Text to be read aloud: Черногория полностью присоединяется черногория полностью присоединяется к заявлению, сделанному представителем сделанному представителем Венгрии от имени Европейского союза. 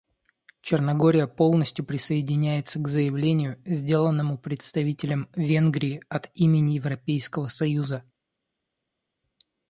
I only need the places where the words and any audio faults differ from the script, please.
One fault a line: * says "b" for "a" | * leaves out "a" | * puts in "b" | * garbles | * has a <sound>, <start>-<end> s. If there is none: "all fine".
* leaves out "черногория полностью присоединяется"
* leaves out "сделанному представителем"